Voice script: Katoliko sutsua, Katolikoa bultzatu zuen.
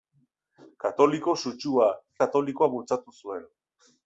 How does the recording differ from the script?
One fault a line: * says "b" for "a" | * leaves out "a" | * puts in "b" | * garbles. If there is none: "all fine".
all fine